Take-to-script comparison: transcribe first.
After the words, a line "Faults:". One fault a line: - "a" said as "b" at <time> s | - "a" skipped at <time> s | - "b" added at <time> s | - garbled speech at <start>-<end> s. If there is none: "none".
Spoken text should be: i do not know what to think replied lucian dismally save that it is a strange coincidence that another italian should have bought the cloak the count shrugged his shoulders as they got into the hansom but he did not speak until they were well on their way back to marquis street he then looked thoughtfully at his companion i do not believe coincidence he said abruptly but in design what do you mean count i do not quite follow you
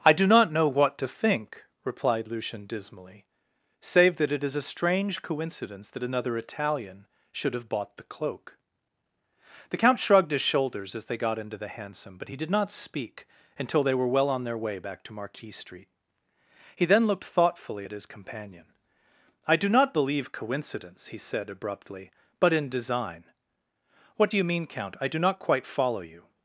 i do not know what to think replied lucian dismally save that it is a strange coincidence that another italian should have bought the cloak the count shrugged his shoulders as they got into the hansom but he did not speak until they were well on their way back to marquis street he then looked thoughtfully at his companion i do not believe coincidence he said abruptly but in design what do you mean count i do not quite follow you
Faults:
none